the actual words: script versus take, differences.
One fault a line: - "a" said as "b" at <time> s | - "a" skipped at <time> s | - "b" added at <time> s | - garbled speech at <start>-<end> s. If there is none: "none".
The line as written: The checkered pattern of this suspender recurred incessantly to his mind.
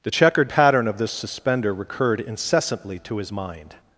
none